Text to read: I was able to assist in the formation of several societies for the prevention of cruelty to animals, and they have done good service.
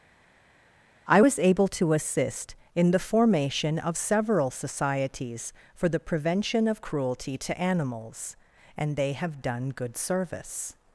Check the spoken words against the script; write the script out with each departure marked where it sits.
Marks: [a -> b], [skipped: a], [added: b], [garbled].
I was able to assist in the formation of several societies for the prevention of cruelty to animals, and they have done good service.